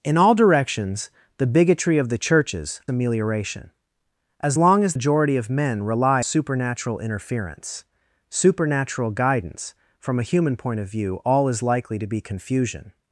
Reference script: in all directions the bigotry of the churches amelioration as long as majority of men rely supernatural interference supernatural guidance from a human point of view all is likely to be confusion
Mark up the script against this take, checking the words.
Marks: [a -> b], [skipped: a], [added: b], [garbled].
in all directions the bigotry of the churches amelioration as long as majority of men rely supernatural interference supernatural guidance from a human point of view all is likely to be confusion